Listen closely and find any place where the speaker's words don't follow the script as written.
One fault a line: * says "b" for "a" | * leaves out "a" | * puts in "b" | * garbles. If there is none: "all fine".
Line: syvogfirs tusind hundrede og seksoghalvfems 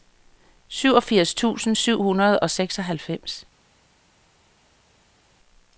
* puts in "syv"